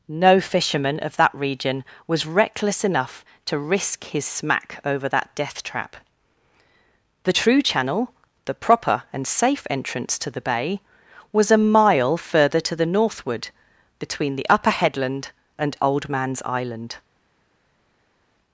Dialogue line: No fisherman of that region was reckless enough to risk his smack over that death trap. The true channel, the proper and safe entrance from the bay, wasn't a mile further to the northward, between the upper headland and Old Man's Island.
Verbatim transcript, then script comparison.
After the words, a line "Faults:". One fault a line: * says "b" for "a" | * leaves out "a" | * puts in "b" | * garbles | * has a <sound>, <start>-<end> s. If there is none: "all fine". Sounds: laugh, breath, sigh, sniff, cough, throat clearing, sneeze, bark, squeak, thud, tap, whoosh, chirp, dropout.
No fisherman of that region was reckless enough to risk his smack over that death trap. The true channel, the proper and safe entrance to the bay, was a mile further to the northward, between the upper headland and Old Man's Island.
Faults:
* says "to" for "from"
* says "was" for "wasn't"